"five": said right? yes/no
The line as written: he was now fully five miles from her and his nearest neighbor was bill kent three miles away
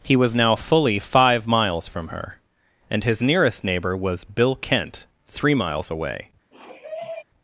yes